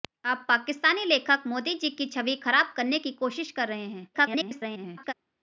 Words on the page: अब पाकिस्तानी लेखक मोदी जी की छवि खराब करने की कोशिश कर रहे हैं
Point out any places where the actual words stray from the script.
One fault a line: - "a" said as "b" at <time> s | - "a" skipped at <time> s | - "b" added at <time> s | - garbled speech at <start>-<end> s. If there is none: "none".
- garbled speech at 4.1-5.1 s